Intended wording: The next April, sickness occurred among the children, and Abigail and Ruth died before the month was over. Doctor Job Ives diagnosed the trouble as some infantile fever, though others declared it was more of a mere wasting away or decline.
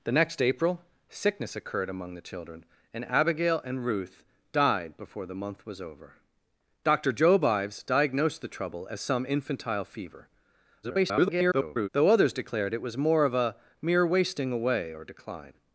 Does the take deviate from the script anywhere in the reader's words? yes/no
yes